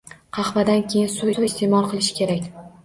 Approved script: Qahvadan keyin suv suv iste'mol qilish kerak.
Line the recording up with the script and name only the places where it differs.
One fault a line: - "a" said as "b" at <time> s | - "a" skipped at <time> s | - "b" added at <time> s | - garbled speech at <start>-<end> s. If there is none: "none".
none